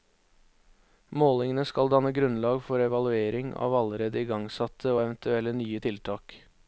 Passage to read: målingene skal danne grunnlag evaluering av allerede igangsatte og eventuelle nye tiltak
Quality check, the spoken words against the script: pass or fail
fail